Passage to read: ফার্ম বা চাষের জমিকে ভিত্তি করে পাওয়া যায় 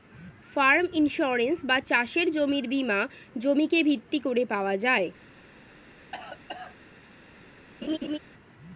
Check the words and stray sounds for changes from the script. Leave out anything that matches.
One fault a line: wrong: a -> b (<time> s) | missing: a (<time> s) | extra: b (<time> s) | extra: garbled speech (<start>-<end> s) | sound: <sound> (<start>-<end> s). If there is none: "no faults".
extra: ইন্সুরেন্স (0.9 s)
extra: জমির বীমা (2.3 s)
sound: cough (6.1-6.8 s)
sound: laugh (7.8-8.2 s)